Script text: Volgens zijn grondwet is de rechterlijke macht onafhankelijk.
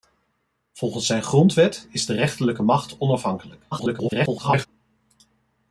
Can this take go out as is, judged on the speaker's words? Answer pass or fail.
fail